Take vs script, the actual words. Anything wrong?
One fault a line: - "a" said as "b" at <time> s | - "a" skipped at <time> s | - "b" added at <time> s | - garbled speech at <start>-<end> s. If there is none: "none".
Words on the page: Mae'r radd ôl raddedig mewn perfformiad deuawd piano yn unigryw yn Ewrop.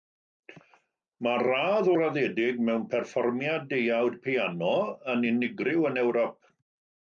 - "ôl" skipped at 1.9 s